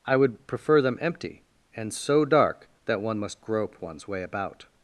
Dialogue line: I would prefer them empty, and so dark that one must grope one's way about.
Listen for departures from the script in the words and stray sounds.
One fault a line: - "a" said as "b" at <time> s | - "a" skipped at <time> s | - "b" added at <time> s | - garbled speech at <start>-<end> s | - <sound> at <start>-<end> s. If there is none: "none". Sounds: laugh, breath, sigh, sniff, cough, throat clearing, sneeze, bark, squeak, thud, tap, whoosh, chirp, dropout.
none